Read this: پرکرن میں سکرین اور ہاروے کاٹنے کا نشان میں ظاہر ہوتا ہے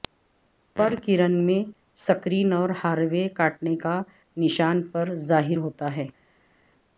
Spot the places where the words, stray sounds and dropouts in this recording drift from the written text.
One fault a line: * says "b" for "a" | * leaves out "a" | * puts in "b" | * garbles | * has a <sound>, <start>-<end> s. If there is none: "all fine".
* says "پر" for "میں"